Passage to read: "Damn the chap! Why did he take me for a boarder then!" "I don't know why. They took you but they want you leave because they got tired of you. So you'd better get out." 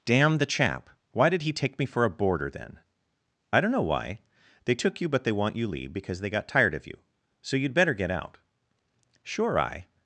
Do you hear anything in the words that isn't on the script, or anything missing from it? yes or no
yes